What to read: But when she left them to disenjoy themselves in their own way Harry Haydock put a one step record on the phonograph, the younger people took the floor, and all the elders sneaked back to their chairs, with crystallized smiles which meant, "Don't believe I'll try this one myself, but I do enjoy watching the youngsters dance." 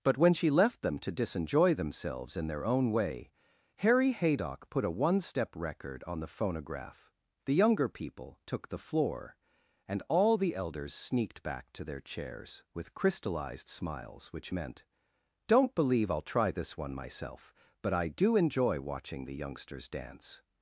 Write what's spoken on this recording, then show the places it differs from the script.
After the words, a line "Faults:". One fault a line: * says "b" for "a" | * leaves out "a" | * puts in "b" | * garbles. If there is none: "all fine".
But when she left them to disenjoy themselves in their own way Harry Haydock put a one step record on the phonograph, the younger people took the floor, and all the elders sneaked back to their chairs, with crystallized smiles which meant, "Don't believe I'll try this one myself, but I do enjoy watching the youngsters dance."
Faults:
all fine